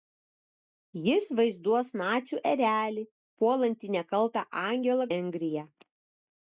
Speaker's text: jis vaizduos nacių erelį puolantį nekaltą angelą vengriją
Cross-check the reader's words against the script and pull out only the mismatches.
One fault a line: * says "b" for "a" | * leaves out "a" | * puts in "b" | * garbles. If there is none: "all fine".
all fine